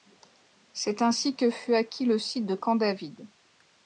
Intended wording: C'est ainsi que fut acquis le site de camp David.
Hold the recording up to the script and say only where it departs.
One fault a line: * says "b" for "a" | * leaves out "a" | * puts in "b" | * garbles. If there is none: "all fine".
all fine